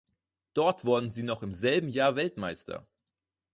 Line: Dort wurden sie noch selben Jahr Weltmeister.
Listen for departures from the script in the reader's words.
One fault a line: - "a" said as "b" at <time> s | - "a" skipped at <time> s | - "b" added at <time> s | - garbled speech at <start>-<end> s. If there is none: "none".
- "im" added at 1.4 s